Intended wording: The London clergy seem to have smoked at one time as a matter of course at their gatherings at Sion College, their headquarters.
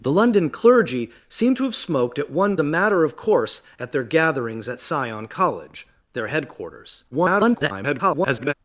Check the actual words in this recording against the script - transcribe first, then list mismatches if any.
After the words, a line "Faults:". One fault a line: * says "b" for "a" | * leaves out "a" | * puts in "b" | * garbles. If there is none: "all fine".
The London clergy seem to have smoked at one a matter of course at their gatherings at Sion College, their headquarters. [garbled]
Faults:
* leaves out "time as"
* garbles